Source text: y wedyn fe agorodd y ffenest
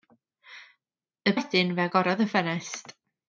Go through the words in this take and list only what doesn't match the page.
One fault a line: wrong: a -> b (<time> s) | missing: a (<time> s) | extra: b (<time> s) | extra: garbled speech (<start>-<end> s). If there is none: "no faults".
no faults